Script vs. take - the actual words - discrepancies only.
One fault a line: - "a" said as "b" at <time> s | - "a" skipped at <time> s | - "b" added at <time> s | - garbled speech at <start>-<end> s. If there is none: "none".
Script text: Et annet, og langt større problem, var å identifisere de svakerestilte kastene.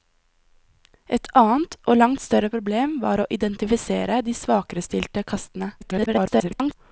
- garbled speech at 5.8-6.7 s